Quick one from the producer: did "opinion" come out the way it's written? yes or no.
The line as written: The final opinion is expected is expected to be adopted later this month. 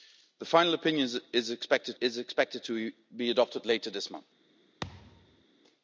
yes